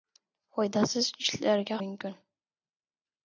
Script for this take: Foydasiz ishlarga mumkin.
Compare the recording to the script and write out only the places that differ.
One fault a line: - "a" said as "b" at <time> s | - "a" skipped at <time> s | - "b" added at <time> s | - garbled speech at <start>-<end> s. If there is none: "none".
none